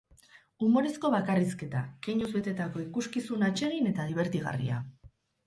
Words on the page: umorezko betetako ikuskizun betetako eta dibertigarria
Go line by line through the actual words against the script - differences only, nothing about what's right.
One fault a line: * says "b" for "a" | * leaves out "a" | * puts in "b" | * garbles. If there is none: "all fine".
* puts in "bakarrizketa keinuz"
* says "atsegin" for "betetako"